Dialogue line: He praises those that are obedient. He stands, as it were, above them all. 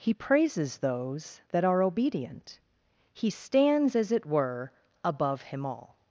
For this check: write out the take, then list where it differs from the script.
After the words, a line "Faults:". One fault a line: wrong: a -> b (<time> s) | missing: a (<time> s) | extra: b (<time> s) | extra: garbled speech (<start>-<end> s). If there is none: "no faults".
He praises those that are obedient. He stands, as it were, above him all.
Faults:
wrong: them -> him (5.4 s)